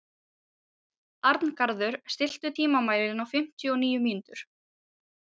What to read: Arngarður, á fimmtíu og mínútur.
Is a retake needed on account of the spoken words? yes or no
yes